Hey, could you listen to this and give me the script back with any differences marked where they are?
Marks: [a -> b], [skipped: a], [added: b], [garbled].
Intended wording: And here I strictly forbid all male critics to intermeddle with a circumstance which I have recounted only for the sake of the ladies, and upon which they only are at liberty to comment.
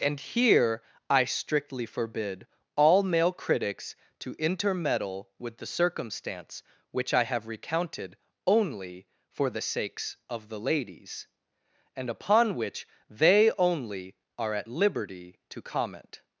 And here I strictly forbid all male critics to intermeddle with [a -> the] circumstance which I have recounted only for the [sake -> sakes] of the ladies, and upon which they only are at liberty to comment.